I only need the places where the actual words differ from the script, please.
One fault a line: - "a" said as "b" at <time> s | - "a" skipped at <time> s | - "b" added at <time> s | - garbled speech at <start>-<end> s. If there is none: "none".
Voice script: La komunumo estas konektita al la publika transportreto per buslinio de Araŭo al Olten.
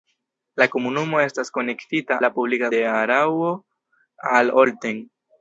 - "al" skipped at 2.2 s
- "transportreto per buslinio" skipped at 2.7 s